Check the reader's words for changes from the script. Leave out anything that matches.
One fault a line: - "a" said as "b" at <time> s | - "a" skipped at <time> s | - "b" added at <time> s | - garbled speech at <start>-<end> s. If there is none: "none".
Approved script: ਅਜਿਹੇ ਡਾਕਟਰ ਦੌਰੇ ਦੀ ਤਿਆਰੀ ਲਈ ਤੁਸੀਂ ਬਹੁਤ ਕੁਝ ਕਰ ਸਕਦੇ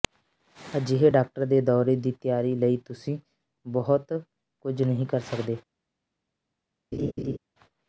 - "ਦੇ" added at 1.5 s
- "ਨਹੀਂ" added at 4.8 s